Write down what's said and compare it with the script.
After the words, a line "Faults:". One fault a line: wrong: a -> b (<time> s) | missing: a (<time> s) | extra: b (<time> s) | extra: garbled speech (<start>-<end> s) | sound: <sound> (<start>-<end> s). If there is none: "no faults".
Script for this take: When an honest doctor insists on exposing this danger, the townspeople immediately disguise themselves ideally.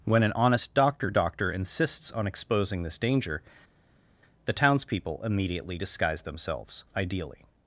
When an honest doctor doctor insists on exposing this danger, the townspeople immediately disguise themselves ideally.
Faults:
extra: doctor (1.1 s)